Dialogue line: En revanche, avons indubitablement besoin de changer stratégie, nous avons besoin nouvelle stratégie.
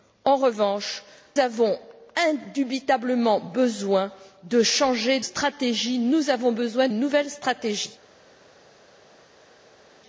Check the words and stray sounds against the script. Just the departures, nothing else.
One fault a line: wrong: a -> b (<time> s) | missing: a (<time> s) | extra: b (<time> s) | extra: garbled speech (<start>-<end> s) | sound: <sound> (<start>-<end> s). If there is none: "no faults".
no faults